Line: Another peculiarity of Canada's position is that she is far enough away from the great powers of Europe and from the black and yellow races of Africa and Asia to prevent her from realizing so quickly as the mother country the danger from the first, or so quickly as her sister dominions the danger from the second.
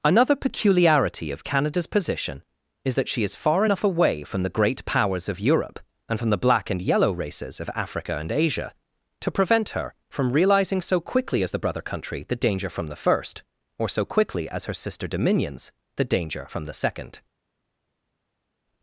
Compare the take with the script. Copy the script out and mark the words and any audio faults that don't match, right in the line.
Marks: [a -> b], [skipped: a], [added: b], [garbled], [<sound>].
Another peculiarity of Canada's position is that she is far enough away from the great powers of Europe and from the black and yellow races of Africa and Asia to prevent her from realizing so quickly as the [mother -> brother] country the danger from the first, or so quickly as her sister dominions the danger from the second.